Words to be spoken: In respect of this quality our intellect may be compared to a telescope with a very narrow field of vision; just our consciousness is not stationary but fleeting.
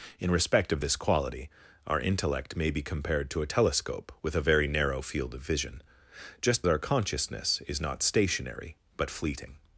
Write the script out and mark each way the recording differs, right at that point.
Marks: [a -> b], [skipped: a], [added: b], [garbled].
In respect of this quality our intellect may be compared to a telescope with a very narrow field of vision; just our consciousness is not stationary but fleeting.